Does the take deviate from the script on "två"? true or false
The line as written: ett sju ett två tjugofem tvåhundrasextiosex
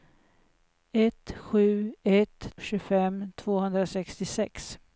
true